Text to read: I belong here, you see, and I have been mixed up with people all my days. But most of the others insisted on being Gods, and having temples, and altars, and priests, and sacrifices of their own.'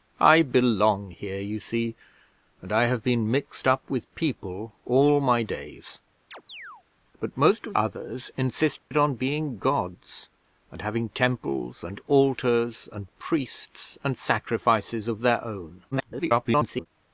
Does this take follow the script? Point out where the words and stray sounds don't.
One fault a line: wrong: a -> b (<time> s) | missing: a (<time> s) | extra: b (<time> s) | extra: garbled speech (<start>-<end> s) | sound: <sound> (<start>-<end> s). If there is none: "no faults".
sound: chirp (6.3-6.8 s)
missing: the (7.7 s)
sound: dropout (8.8-8.9 s)
extra: garbled speech (15.9-16.9 s)